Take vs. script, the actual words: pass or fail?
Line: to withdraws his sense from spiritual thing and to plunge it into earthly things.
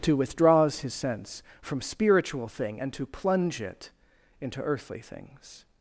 pass